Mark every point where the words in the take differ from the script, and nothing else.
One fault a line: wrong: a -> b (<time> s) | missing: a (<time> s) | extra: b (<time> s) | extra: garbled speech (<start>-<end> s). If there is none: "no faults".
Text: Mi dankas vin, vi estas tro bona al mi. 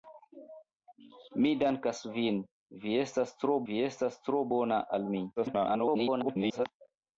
extra: vi estas tro (3.7 s)
extra: garbled speech (5.4-6.7 s)